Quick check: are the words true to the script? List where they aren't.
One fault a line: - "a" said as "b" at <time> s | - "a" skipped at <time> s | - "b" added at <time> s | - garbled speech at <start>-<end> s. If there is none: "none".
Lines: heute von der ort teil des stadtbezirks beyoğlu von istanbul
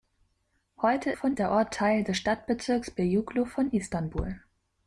none